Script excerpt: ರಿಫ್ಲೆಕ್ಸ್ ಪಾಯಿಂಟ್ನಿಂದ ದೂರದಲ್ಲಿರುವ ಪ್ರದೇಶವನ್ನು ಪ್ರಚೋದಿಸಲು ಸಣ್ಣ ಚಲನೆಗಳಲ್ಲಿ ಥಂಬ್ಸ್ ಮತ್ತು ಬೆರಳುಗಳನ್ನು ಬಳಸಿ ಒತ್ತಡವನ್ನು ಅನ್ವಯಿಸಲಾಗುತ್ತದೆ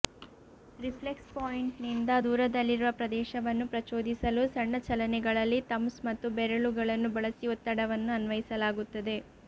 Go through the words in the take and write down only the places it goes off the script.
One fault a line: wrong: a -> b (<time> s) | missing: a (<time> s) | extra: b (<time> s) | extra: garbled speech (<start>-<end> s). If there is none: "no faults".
no faults